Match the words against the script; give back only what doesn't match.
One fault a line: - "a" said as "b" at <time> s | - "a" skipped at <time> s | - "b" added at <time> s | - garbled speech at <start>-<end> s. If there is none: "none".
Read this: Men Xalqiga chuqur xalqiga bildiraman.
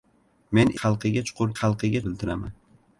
none